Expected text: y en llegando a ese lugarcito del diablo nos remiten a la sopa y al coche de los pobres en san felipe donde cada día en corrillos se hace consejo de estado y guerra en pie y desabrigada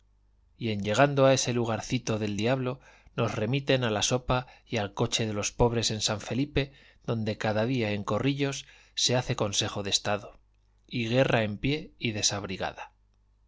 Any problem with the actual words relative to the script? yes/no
no